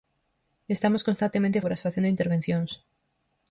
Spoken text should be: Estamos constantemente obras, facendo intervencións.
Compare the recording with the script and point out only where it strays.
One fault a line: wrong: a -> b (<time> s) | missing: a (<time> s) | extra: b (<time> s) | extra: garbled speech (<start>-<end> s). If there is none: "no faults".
no faults